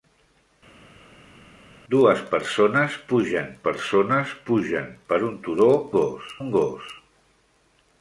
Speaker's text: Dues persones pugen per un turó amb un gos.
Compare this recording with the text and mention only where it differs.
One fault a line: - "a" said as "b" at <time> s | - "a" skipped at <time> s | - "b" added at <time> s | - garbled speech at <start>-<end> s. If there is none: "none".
- "persones pugen" added at 3.6 s
- "amb" said as "gos" at 6.0 s